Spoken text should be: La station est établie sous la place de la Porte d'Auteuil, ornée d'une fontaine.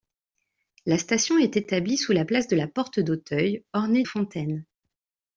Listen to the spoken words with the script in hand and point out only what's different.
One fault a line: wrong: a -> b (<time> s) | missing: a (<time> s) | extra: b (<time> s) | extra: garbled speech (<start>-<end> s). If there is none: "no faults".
missing: d'une (4.0 s)